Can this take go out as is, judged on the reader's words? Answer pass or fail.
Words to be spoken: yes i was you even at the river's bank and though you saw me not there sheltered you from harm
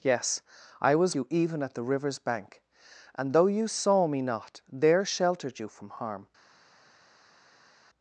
pass